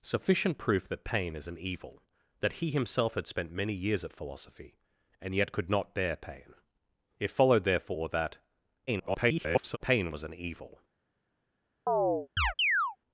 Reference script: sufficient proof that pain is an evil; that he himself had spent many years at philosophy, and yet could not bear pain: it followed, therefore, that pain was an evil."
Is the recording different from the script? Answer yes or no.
yes